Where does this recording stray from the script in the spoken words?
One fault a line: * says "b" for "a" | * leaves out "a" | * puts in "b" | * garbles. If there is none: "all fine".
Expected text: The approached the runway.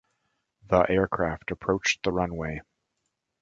* puts in "aircraft"